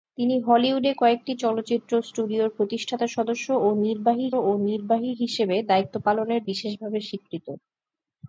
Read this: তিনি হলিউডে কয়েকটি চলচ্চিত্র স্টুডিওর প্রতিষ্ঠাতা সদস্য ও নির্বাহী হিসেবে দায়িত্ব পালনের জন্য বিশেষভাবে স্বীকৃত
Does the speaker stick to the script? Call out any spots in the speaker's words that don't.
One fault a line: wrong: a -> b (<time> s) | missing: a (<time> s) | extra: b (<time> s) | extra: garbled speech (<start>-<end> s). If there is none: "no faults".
extra: ও নির্বাহী (4.4 s)
missing: জন্য (6.4 s)